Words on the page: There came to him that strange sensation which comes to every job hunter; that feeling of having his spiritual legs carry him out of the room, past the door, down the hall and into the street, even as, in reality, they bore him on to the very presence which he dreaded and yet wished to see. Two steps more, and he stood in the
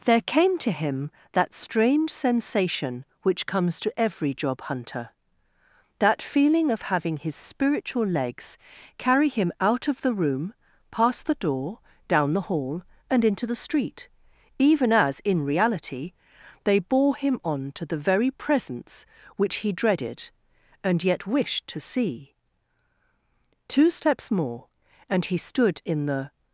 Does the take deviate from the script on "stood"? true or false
false